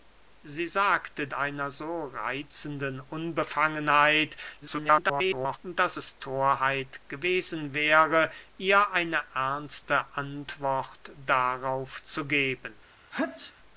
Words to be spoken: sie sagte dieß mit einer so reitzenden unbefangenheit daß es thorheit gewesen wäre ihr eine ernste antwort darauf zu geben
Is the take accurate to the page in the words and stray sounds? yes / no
no